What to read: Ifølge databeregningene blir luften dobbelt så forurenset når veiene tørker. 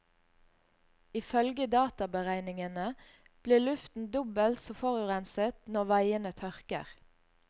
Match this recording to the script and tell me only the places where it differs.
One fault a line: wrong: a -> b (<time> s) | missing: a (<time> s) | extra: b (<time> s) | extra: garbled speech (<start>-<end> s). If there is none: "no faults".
no faults